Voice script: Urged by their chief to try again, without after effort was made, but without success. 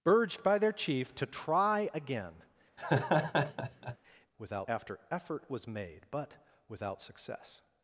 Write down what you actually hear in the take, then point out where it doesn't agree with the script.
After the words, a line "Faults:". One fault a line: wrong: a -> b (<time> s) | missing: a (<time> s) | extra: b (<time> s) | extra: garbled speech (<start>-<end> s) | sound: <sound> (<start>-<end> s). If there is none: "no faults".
Urged by their chief to try again, without after effort was made, but without success.
Faults:
sound: laugh (2.8-4.0 s)